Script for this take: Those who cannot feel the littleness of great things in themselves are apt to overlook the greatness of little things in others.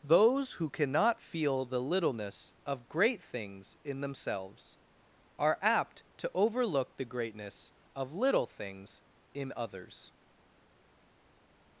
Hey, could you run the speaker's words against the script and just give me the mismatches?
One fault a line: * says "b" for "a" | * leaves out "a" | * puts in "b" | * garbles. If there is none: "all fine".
all fine